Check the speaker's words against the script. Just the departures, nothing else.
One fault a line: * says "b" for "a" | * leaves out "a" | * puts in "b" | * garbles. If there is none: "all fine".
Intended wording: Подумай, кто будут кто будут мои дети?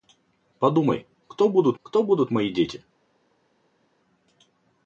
all fine